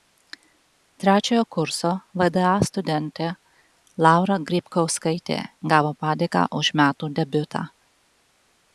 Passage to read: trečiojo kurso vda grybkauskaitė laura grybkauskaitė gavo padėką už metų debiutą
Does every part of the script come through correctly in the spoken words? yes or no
no